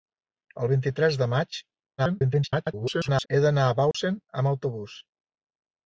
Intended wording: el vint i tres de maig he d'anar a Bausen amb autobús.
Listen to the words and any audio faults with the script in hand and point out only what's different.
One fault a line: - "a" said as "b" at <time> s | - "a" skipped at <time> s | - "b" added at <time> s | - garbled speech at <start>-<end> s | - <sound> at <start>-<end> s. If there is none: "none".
- garbled speech at 2.0-3.3 s
- dropout at 3.9-3.9 s